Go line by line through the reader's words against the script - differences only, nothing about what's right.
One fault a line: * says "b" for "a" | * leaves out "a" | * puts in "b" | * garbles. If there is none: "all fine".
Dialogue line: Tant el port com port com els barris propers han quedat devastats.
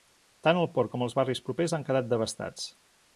* leaves out "port com"